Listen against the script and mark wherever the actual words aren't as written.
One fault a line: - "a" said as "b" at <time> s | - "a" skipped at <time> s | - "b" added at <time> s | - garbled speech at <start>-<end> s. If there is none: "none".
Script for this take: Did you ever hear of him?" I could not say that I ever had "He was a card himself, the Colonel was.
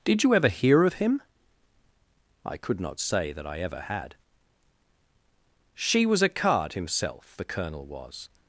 - "He" said as "She" at 5.8 s